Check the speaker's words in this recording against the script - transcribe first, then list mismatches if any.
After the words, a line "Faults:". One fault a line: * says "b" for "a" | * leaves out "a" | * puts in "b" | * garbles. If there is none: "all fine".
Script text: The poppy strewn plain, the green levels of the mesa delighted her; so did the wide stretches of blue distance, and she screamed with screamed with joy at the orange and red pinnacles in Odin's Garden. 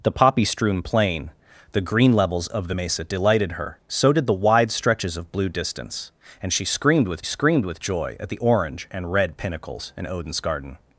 The poppy strewn plain, the green levels of the mesa delighted her; so did the wide stretches of blue distance, and she screamed with screamed with joy at the orange and red pinnacles in Odin's Garden.
Faults:
all fine